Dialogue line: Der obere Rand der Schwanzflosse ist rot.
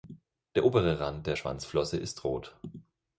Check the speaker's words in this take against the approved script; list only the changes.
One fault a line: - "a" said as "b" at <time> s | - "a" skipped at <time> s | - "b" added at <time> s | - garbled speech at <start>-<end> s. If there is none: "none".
none